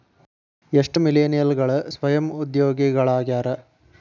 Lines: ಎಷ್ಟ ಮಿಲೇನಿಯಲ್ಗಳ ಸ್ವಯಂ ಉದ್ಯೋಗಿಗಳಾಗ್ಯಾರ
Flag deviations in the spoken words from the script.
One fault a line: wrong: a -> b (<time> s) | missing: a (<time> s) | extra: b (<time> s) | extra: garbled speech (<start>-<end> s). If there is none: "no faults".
no faults